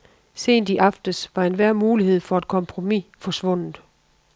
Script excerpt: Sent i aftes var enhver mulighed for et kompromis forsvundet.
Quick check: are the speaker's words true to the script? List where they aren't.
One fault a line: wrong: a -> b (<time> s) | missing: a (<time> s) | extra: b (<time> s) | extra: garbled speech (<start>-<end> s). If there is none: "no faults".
no faults